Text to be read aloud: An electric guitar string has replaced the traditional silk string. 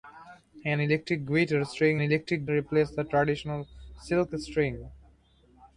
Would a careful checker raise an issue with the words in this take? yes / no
yes